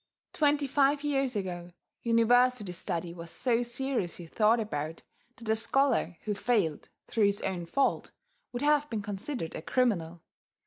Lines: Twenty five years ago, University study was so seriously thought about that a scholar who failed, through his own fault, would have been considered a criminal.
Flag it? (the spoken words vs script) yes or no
no